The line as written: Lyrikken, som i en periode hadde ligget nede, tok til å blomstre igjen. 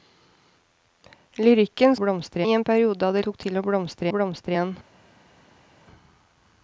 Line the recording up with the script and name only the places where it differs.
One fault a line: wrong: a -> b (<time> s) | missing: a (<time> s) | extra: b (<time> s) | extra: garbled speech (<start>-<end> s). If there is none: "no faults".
wrong: som -> blomstre (2.0 s)
missing: ligget nede (3.2 s)
extra: blomstre (4.1 s)